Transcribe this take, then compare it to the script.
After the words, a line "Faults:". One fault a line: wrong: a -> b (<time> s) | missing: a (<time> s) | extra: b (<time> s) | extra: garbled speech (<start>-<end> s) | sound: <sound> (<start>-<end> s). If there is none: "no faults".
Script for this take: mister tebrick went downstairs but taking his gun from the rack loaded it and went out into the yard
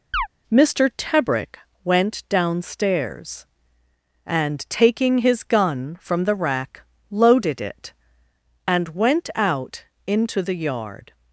mister tebrick went downstairs and taking his gun from the rack loaded it and went out into the yard
Faults:
sound: chirp (0.1-0.3 s)
wrong: but -> and (4.2 s)